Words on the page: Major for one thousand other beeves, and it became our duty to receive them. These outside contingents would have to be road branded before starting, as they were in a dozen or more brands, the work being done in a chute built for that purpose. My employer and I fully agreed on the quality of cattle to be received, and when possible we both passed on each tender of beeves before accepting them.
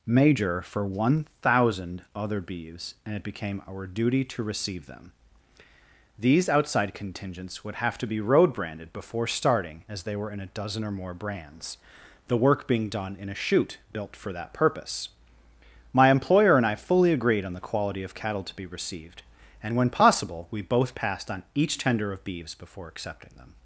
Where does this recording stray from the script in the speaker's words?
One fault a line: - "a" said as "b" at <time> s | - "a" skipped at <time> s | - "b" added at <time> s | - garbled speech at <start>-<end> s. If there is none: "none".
none